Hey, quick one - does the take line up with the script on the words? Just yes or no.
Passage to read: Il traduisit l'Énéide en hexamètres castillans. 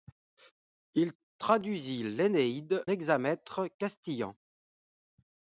no